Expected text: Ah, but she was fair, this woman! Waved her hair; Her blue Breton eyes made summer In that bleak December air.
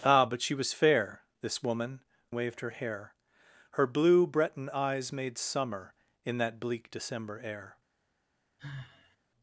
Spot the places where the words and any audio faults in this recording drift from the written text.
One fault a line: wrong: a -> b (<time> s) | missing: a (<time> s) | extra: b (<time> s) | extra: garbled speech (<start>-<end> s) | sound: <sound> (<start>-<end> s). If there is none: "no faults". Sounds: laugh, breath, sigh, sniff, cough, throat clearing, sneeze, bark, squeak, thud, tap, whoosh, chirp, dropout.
sound: sigh (8.6-9.2 s)